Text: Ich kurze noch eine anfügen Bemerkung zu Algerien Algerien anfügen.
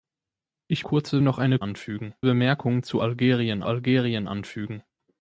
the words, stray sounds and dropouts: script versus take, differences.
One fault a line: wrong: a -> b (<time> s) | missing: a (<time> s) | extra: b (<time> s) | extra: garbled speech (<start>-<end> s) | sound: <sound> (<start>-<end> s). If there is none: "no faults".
no faults